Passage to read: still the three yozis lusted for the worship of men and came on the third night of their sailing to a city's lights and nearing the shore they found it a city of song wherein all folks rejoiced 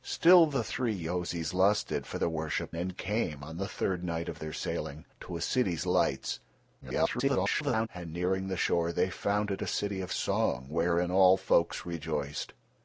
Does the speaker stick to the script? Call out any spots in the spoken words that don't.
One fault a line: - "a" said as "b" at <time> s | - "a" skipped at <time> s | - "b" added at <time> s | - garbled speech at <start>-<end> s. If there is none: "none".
- "of men" skipped at 2.8 s
- garbled speech at 6.8-7.9 s